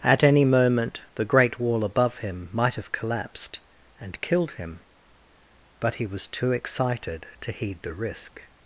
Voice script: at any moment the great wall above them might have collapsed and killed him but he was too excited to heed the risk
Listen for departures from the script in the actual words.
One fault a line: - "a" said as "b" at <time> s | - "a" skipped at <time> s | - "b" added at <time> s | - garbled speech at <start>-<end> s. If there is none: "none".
- "them" said as "him" at 2.2 s